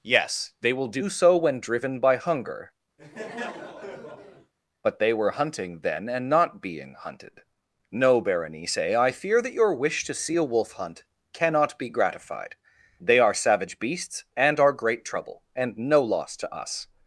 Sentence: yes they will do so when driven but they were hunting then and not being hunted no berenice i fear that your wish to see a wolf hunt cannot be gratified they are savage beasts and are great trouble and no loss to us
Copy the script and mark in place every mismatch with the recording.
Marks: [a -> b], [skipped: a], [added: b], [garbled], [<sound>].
yes they will do so when driven [added: by hunger] [laugh] but they were hunting then and not being hunted no berenice i fear that your wish to see a wolf hunt cannot be gratified they are savage beasts and are great trouble and no loss to us